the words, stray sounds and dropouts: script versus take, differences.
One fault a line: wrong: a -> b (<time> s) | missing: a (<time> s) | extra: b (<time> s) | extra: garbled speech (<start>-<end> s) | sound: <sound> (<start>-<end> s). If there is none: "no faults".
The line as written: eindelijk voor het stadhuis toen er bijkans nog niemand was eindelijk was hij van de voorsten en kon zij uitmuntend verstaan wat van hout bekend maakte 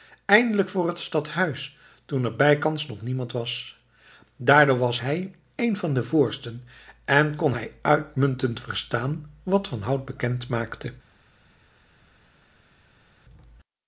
wrong: eindelijk -> daardoor (4.3 s)
extra: een (5.5 s)
wrong: zij -> hij (7.5 s)